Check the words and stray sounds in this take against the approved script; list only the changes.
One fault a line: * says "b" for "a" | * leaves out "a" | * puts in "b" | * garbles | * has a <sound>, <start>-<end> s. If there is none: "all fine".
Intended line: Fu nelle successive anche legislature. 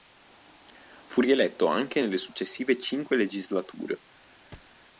* puts in "rieletto anche"
* says "cinque" for "anche"
* has a thud, 4.5-4.8 s